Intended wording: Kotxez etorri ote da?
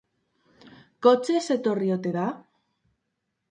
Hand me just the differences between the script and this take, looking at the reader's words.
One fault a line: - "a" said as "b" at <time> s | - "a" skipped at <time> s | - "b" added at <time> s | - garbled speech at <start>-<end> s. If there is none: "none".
none